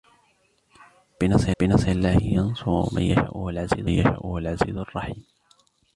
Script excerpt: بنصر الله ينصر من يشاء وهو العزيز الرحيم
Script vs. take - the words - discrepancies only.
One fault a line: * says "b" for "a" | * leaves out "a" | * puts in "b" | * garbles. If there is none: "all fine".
* puts in "بنصر"
* puts in "يشاء وهو العزيز"